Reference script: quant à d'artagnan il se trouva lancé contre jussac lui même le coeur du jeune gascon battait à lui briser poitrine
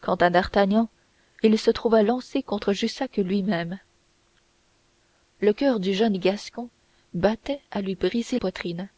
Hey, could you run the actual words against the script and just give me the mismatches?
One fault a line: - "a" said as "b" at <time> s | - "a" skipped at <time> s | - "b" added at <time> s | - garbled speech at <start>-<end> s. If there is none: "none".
none